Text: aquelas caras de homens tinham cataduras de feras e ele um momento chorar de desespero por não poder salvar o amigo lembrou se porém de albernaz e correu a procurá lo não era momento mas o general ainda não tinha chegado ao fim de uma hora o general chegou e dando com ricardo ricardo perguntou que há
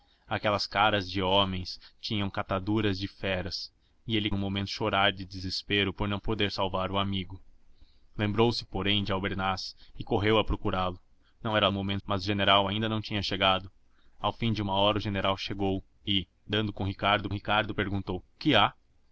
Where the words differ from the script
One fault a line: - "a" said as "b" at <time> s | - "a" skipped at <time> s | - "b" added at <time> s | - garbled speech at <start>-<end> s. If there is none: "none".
none